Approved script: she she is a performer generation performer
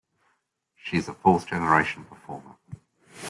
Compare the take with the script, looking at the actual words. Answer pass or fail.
fail